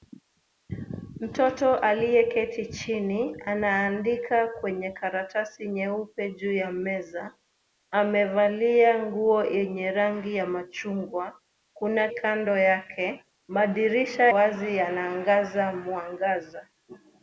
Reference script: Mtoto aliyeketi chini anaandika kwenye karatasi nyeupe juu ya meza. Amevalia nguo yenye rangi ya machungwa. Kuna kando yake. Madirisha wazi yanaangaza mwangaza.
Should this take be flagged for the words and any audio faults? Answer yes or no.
no